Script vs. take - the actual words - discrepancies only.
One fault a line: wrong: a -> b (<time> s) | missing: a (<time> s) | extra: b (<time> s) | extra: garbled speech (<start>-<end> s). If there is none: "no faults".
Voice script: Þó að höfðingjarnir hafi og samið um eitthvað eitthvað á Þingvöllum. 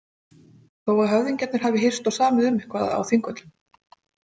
extra: hist (1.9 s)
missing: eitthvað (2.9 s)